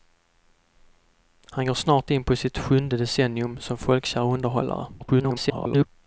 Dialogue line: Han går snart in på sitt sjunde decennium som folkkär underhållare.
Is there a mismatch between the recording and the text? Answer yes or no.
yes